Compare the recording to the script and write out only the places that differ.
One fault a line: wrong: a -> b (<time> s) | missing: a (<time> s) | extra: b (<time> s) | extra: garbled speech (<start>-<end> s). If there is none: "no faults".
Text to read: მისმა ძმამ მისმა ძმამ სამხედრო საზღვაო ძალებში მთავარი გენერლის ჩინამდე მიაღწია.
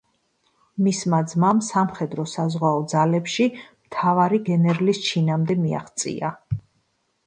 missing: მისმა ძმამ (1.6 s)